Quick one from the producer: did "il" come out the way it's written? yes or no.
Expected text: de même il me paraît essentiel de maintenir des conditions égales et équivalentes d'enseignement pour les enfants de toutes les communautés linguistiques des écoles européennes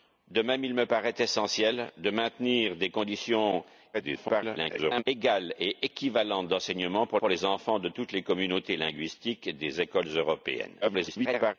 yes